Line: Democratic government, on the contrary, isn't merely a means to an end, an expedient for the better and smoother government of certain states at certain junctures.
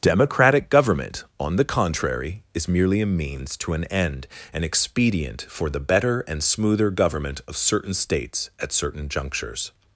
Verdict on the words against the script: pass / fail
fail